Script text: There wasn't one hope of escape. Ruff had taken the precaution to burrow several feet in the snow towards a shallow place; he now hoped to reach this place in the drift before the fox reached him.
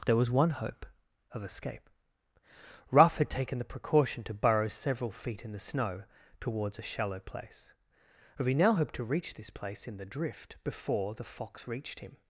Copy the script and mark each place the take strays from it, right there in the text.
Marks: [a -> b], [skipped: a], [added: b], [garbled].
There [wasn't -> was] one hope of escape. Ruff had taken the precaution to burrow several feet in the snow towards a shallow place; he now hoped to reach this place in the drift before the fox reached him.